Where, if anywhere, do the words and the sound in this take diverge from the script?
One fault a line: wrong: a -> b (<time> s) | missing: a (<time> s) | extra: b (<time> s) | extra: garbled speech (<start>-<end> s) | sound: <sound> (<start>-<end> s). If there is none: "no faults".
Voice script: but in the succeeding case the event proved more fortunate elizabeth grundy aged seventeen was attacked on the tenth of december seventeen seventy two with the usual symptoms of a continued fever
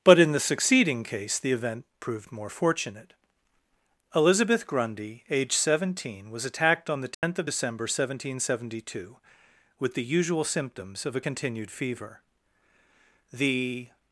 sound: dropout (7.1-7.2 s)
extra: the (13.3 s)